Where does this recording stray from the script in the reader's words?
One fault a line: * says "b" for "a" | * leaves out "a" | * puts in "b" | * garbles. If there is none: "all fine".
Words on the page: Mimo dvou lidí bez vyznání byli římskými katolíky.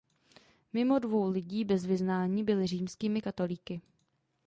all fine